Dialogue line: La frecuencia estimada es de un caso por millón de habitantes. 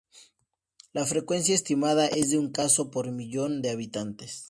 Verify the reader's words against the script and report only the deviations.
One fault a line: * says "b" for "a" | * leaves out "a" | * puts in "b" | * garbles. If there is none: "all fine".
all fine